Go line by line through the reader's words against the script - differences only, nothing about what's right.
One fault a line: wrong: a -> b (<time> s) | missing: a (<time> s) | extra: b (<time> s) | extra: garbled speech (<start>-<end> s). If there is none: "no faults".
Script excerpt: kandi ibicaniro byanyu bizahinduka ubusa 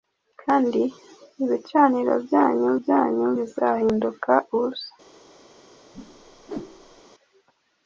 extra: byanyu (2.8 s)